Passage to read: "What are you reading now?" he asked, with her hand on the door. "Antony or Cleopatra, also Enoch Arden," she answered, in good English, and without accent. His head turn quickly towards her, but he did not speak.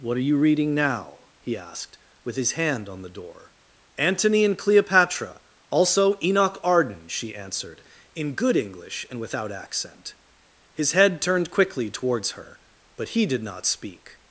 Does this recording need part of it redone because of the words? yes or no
yes